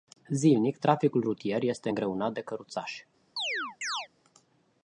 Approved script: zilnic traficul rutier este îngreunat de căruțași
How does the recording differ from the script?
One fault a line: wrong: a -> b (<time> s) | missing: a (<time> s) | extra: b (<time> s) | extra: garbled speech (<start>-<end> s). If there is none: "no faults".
no faults